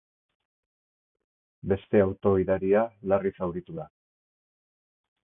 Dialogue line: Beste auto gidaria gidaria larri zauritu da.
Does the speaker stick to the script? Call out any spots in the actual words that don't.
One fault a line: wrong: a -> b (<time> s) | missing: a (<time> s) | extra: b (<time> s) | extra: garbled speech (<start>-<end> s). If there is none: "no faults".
missing: gidaria (2.8 s)